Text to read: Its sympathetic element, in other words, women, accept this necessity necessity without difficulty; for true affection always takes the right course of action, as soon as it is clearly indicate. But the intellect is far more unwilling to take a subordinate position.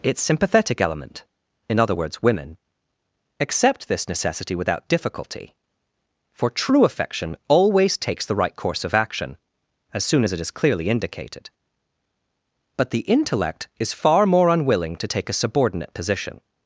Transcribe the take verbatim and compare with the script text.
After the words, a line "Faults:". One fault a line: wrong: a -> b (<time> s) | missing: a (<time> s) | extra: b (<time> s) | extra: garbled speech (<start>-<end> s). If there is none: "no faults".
Its sympathetic element, in other words, women, accept this necessity without difficulty; for true affection always takes the right course of action, as soon as it is clearly indicated. But the intellect is far more unwilling to take a subordinate position.
Faults:
missing: necessity (4.6 s)
wrong: indicate -> indicated (10.9 s)